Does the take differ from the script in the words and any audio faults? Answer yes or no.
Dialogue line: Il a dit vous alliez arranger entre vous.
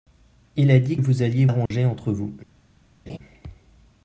yes